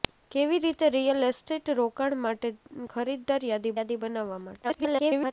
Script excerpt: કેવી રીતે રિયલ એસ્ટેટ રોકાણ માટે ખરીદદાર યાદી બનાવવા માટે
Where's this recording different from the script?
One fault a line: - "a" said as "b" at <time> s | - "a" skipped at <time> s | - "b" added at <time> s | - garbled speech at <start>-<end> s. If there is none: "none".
- "યાદી" added at 3.8 s
- garbled speech at 4.6-5.3 s